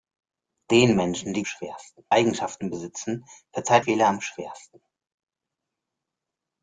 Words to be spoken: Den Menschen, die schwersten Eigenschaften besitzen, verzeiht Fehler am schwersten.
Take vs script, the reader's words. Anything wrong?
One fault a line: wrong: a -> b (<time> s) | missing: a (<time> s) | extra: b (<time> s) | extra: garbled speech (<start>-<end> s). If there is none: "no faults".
no faults